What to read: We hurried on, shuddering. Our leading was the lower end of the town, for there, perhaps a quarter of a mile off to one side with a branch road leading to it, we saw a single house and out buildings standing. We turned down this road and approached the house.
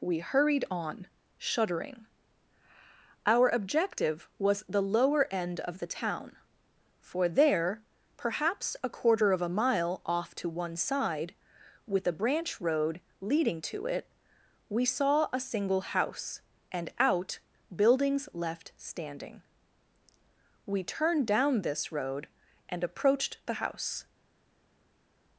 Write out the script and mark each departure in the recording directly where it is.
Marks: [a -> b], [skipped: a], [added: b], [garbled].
We hurried on, shuddering. Our [leading -> objective] was the lower end of the town, for there, perhaps a quarter of a mile off to one side with a branch road leading to it, we saw a single house and out buildings [added: left] standing. We turned down this road and approached the house.